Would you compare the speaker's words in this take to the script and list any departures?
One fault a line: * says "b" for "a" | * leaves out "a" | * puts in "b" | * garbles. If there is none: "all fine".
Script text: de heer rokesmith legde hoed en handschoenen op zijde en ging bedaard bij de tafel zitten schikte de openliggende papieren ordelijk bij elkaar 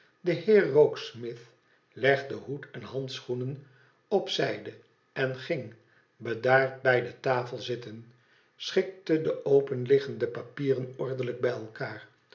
all fine